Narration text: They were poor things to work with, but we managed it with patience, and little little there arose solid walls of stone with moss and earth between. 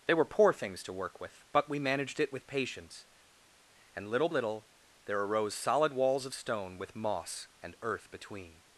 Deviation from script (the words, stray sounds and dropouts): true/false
false